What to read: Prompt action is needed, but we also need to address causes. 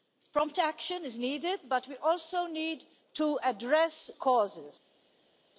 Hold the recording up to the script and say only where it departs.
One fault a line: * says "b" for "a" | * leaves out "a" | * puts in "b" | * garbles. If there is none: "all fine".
all fine